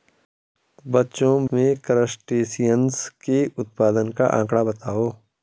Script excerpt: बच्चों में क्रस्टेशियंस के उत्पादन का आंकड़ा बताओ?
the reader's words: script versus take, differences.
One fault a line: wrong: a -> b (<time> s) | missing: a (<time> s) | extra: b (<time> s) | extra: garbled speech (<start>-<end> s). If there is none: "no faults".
no faults